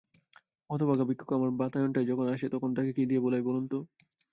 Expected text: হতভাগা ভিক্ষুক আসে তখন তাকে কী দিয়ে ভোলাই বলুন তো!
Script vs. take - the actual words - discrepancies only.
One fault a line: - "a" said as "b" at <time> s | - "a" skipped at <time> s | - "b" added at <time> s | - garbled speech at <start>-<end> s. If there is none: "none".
- "আমার বাতায়নটায় যখন" added at 1.3 s